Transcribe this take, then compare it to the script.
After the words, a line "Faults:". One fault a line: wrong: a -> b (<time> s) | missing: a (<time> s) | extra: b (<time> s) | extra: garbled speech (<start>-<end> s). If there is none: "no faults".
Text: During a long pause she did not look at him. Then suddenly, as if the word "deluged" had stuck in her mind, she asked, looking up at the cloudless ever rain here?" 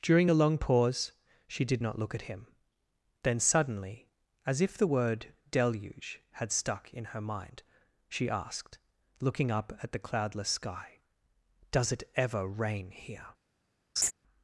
During a long pause she did not look at him. Then suddenly, as if the word "deluge" had stuck in her mind, she asked, looking up at the cloudless sky: "Does it ever rain here?"
Faults:
wrong: deluged -> deluge (5.5 s)
extra: sky Does it (10.5 s)